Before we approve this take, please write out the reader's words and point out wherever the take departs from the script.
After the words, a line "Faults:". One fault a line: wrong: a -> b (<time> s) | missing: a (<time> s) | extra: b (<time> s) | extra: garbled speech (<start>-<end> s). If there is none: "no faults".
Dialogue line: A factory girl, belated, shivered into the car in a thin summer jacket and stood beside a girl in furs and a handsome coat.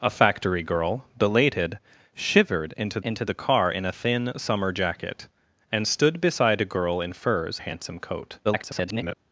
A factory girl, belated, shivered into into the car in a thin summer jacket and stood beside a girl in furs a handsome coat. [garbled]
Faults:
extra: into (3.0 s)
missing: and (7.6 s)
extra: garbled speech (8.4-9.1 s)